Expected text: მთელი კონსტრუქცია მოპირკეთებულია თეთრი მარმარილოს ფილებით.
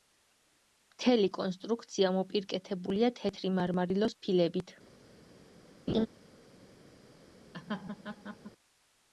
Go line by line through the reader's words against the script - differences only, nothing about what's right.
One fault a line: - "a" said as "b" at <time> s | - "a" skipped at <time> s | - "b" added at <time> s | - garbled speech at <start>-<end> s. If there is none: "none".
none